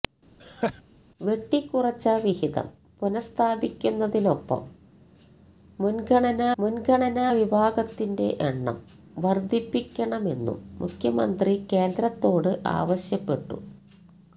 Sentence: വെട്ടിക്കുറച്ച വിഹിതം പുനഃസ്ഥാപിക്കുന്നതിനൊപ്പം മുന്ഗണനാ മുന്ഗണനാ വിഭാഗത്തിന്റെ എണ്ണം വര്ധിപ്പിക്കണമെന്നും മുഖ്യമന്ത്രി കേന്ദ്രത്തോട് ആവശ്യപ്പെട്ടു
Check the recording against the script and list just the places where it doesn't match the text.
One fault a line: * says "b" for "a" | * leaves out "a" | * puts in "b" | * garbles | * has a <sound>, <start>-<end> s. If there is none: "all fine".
* has a laugh, 0.4-0.8 s